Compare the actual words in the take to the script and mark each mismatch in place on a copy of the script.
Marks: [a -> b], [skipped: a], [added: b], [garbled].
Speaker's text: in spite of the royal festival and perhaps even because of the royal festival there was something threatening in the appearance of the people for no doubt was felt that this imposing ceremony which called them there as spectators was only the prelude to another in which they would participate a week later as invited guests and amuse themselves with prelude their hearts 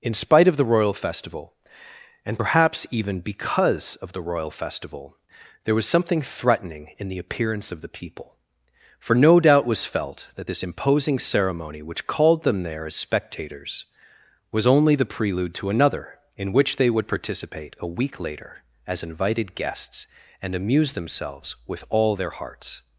in spite of the royal festival and perhaps even because of the royal festival there was something threatening in the appearance of the people for no doubt was felt that this imposing ceremony which called them there as spectators was only the prelude to another in which they would participate a week later as invited guests and amuse themselves with [prelude -> all] their hearts